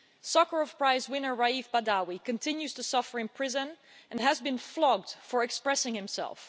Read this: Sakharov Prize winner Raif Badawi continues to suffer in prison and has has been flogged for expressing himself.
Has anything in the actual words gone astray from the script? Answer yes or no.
yes